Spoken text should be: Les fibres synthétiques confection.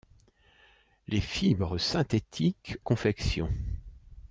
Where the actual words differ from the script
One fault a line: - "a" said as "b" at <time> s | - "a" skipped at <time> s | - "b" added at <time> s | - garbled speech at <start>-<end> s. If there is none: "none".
none